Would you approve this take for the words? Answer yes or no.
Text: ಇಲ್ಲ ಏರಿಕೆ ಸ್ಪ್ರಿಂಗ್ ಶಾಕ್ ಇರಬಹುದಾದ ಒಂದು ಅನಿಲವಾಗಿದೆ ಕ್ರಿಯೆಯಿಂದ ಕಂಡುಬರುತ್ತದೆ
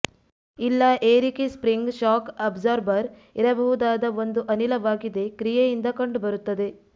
no